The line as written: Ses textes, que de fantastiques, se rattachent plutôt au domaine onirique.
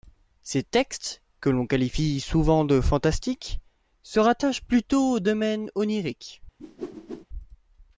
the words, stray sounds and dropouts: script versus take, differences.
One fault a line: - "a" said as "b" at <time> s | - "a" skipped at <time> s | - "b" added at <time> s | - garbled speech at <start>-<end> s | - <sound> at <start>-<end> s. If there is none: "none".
- "l'on qualifie souvent" added at 1.5 s
- whoosh at 6.6-7.3 s